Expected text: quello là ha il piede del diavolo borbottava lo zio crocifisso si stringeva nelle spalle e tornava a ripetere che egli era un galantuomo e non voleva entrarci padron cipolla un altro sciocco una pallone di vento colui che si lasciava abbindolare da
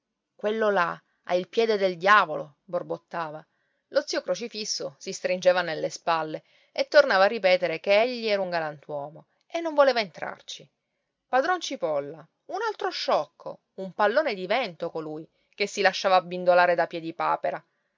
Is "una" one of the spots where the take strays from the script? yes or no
yes